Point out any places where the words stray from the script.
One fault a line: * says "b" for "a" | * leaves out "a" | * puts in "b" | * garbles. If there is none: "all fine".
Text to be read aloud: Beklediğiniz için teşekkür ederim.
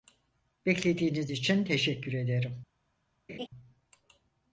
all fine